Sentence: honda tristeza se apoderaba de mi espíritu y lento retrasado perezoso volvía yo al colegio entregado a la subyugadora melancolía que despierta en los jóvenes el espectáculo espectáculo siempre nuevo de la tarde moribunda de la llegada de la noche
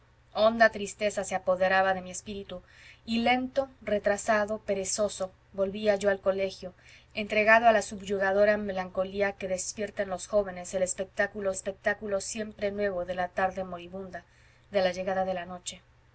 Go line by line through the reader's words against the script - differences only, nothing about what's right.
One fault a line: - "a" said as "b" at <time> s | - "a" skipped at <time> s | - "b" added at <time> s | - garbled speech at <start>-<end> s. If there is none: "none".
none